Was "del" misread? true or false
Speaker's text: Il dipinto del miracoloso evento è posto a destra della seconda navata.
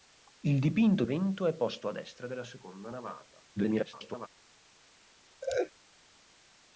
true